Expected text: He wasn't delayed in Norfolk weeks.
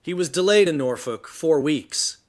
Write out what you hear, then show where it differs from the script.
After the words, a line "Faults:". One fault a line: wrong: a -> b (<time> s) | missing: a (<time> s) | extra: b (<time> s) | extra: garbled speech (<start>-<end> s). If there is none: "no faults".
He was delayed in Norfolk four weeks.
Faults:
wrong: wasn't -> was (0.1 s)
extra: four (1.3 s)